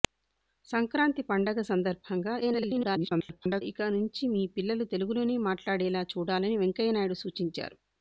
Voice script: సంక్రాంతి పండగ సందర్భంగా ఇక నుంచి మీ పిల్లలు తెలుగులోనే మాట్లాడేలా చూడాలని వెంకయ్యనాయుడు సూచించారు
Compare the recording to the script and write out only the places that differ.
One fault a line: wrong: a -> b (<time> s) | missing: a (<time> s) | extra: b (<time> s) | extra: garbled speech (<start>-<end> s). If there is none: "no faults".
extra: garbled speech (2.4-3.6 s)